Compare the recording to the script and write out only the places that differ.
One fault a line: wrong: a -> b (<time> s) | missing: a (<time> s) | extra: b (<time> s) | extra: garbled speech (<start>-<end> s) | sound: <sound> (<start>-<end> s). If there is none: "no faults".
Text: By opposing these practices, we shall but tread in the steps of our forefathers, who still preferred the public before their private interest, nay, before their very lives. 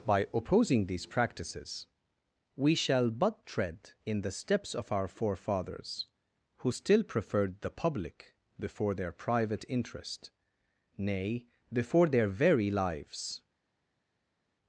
no faults